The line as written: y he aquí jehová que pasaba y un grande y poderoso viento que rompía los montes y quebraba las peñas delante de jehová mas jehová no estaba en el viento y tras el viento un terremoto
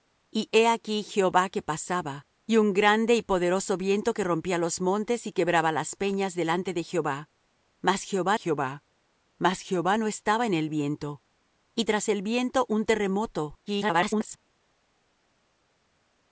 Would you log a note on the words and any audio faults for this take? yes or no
yes